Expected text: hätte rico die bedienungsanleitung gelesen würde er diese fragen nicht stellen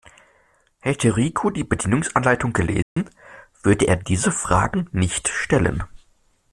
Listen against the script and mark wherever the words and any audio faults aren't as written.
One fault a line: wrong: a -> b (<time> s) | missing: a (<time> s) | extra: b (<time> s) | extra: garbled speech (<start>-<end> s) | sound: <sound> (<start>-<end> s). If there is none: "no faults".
sound: dropout (2.8-3.0 s)